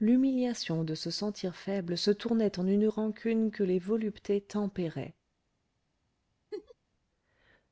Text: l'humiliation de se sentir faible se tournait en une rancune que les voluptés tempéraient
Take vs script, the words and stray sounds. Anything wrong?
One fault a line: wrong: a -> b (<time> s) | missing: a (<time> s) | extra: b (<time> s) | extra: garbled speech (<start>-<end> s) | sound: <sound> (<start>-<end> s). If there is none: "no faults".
sound: laugh (6.5-6.7 s)